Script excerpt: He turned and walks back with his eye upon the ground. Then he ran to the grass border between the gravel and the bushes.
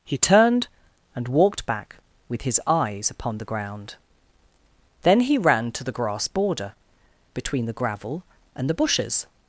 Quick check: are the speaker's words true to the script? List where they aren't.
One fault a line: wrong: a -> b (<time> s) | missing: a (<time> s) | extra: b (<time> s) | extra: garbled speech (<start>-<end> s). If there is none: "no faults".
wrong: walks -> walked (1.3 s)
wrong: eye -> eyes (2.6 s)